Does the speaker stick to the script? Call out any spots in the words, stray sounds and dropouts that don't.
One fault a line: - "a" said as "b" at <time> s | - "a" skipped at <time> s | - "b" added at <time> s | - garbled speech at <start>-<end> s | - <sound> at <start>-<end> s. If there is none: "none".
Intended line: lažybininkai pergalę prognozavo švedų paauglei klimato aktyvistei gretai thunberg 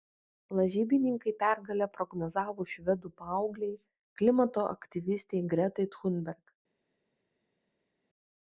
none